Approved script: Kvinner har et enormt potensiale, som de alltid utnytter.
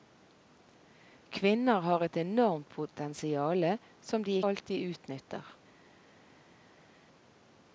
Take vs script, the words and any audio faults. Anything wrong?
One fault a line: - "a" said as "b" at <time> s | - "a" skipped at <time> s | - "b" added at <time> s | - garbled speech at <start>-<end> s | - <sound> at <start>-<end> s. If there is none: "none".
none